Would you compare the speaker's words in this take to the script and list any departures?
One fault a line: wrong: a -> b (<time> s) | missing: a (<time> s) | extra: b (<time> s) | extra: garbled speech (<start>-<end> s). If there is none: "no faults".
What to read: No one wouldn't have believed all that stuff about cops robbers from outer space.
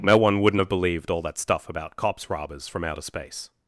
no faults